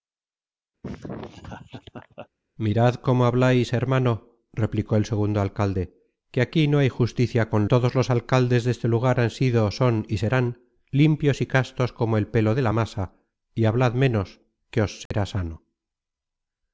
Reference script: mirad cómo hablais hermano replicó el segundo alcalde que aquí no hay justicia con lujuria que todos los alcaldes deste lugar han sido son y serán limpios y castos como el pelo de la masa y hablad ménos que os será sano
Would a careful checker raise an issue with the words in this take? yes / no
yes